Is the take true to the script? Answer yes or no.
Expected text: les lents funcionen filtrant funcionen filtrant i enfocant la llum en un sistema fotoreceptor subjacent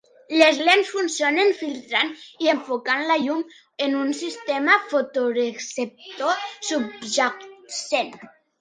no